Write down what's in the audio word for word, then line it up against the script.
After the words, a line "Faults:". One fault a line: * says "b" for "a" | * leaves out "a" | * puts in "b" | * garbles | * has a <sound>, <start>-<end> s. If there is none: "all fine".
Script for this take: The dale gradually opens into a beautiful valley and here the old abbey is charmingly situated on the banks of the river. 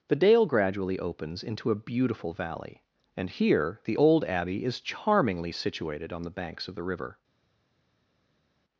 The dale gradually opens into a beautiful valley and here the old abbey is charmingly situated on the banks of the river.
Faults:
all fine